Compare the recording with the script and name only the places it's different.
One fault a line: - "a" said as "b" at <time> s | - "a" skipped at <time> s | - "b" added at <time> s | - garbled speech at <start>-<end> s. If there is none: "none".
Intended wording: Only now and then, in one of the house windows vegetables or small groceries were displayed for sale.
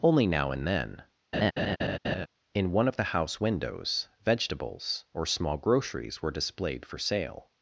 none